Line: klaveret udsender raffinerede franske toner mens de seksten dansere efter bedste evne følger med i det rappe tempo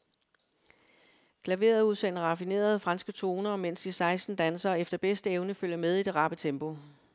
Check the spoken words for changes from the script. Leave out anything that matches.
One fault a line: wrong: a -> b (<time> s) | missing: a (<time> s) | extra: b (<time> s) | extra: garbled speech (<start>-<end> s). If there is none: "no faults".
no faults